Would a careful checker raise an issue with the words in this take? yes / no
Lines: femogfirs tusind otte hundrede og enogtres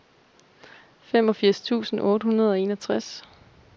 no